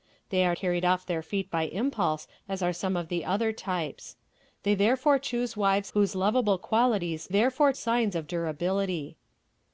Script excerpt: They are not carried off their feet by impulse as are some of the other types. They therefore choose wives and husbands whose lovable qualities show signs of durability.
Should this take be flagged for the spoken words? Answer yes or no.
yes